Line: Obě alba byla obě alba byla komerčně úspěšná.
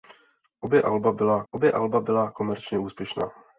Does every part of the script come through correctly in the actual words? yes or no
yes